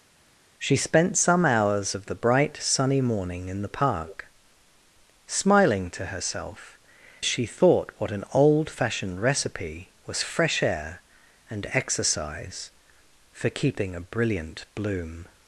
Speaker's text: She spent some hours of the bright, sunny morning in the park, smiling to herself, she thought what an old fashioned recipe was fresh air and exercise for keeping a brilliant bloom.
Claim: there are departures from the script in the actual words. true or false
false